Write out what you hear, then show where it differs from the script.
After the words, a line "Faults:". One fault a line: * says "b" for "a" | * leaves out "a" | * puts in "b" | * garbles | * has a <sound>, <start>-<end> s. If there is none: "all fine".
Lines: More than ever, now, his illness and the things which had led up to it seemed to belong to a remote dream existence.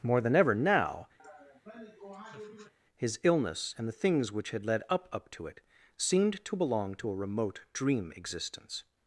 More than ever, now, his illness and the things which had led up up to it seemed to belong to a remote dream existence.
Faults:
* has a laugh, 1.2-2.7 s
* puts in "up"